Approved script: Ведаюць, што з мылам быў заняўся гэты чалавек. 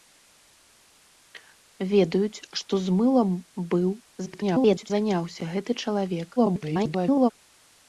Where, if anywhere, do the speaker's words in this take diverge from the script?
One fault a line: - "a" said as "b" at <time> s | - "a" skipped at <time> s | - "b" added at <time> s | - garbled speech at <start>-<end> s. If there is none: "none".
- garbled speech at 4.3-4.9 s
- garbled speech at 6.4-7.3 s